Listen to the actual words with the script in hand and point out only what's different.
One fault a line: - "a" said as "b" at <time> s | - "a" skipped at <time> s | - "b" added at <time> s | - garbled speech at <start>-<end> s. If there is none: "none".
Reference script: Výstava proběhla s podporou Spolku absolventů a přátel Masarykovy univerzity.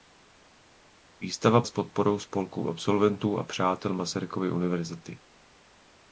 - "proběhla" skipped at 1.6 s